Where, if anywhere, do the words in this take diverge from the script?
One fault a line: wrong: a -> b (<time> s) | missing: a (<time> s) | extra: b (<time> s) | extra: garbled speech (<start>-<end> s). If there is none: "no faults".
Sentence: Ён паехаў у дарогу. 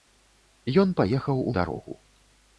no faults